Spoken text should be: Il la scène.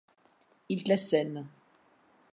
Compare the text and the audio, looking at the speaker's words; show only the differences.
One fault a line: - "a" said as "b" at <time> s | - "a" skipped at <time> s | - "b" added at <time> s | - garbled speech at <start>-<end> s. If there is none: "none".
none